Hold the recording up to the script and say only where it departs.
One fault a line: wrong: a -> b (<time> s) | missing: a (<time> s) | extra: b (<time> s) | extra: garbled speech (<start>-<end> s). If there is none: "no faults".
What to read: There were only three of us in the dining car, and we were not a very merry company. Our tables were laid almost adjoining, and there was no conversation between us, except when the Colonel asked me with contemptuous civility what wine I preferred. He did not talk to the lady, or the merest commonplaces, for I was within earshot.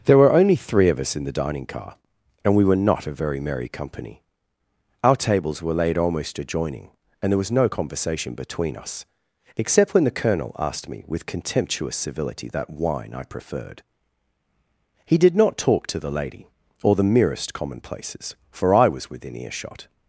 wrong: what -> that (12.5 s)